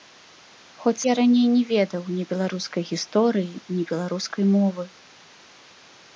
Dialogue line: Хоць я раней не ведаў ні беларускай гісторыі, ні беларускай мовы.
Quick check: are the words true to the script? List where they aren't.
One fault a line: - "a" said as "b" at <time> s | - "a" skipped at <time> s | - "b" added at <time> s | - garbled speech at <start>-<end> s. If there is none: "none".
none